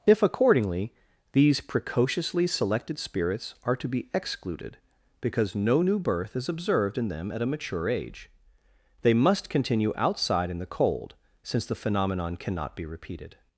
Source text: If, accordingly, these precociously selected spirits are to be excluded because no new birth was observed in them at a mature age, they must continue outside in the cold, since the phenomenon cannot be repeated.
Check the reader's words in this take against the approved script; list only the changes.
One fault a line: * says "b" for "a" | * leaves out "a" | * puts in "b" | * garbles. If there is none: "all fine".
* says "is" for "was"